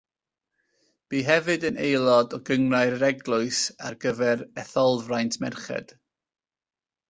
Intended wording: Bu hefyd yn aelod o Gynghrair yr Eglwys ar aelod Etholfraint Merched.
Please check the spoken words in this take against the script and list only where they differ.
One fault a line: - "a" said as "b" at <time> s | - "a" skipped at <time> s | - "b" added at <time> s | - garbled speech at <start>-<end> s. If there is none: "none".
- "aelod" said as "gyfer" at 4.1 s